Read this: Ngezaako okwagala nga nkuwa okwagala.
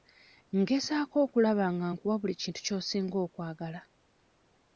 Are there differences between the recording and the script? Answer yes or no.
yes